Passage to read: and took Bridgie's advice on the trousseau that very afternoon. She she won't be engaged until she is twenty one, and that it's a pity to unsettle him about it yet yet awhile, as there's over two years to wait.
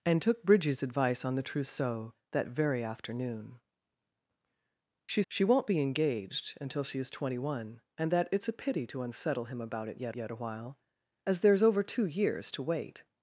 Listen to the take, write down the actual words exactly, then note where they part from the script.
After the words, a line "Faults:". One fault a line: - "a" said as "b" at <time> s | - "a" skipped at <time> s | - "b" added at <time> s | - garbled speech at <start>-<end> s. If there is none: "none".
and took Bridgie's advice on the trousseau that very afternoon. She she won't be engaged until she is twenty one, and that it's a pity to unsettle him about it yet yet awhile, as there's over two years to wait.
Faults:
none